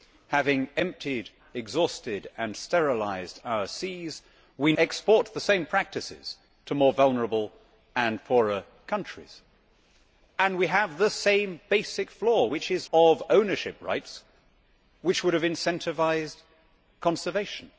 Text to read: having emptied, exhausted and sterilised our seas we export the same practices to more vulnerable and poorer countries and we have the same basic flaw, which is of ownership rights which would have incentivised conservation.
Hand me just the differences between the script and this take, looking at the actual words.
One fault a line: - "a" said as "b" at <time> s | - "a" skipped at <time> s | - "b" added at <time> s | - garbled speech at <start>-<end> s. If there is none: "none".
none